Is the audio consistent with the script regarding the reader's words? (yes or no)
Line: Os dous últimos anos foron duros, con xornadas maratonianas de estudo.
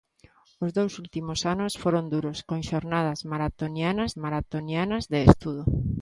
no